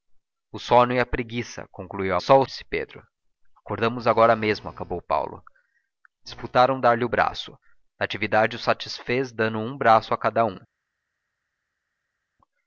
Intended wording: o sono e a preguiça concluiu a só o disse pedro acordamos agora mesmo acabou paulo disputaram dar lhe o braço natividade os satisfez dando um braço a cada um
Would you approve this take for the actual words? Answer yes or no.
yes